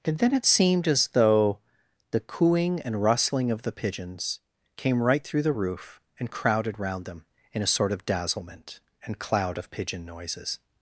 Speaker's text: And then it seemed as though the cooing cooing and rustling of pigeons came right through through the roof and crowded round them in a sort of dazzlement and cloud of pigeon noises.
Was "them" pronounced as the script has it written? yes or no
yes